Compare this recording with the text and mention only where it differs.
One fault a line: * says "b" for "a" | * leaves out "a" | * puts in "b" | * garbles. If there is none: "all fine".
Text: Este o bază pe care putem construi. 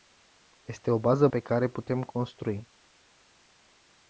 all fine